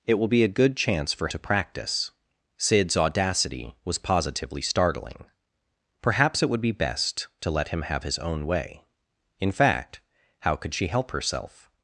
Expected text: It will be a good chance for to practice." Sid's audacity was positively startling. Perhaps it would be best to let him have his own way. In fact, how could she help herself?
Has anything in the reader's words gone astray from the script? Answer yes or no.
no